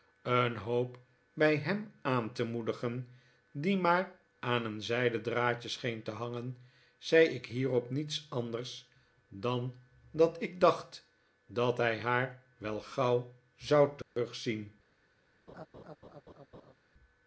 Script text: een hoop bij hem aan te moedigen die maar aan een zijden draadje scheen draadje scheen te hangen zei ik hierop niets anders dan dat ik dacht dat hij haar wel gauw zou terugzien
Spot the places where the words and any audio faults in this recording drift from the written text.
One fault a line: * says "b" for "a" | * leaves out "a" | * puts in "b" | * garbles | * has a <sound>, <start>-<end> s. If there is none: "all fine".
* leaves out "draadje scheen"
* has a dropout, 14.0-14.2 s
* has a laugh, 15.5-16.7 s